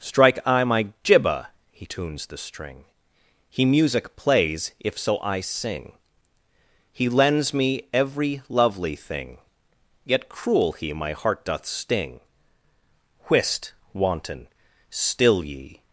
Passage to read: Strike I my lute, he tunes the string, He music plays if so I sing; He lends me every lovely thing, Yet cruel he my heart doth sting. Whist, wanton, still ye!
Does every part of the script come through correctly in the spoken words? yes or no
no